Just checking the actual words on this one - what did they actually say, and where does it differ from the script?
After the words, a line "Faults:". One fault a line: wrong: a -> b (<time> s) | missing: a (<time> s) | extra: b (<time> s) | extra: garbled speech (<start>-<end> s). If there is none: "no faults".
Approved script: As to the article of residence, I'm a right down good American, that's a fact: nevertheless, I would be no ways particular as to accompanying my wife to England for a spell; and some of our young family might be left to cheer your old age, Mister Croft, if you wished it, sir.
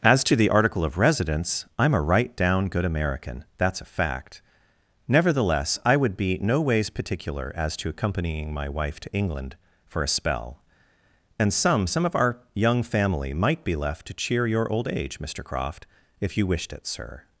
As to the article of residence, I'm a right down good American, that's a fact: nevertheless, I would be no ways particular as to accompanying my wife to England for a spell; and some some of our young family might be left to cheer your old age, Mister Croft, if you wished it, sir.
Faults:
extra: some (11.8 s)